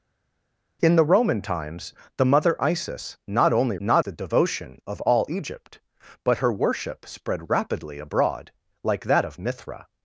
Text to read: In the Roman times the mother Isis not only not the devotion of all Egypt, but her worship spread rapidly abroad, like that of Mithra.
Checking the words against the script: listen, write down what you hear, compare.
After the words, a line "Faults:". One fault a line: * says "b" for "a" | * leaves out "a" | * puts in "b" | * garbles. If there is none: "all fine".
In the Roman times the mother Isis not only not the devotion of all Egypt, but her worship spread rapidly abroad, like that of Mithra.
Faults:
all fine